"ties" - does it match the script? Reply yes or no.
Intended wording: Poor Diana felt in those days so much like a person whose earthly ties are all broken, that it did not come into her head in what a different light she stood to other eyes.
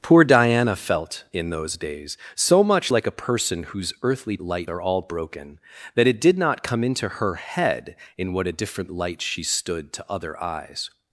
no